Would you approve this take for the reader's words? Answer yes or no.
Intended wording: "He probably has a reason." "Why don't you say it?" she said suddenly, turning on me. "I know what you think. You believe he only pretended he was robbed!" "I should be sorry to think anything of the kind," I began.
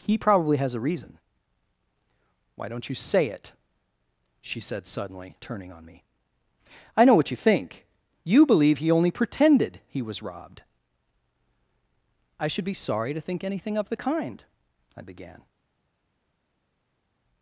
yes